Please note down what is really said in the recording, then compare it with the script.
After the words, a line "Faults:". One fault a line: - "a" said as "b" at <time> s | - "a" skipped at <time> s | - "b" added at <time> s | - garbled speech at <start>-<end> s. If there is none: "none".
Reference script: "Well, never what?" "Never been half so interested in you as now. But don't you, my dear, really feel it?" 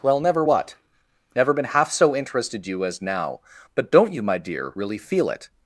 "Well, never what?" "Never been half so interested you as now. But don't you, my dear, really feel it?"
Faults:
- "in" skipped at 2.7 s